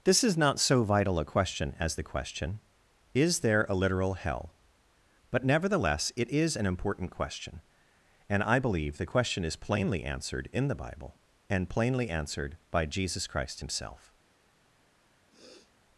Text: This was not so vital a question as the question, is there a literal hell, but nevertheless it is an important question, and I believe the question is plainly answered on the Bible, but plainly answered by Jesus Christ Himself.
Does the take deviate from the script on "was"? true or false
true